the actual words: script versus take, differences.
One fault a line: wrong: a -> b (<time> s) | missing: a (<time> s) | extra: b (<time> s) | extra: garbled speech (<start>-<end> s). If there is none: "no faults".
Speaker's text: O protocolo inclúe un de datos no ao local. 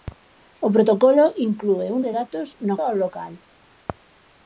no faults